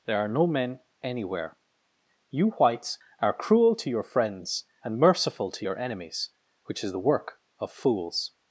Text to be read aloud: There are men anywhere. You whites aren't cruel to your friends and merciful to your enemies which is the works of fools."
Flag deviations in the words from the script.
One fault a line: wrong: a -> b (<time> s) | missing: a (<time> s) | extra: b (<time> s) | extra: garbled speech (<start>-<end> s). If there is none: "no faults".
extra: no (0.3 s)
wrong: aren't -> are (3.2 s)
wrong: works -> work (7.0 s)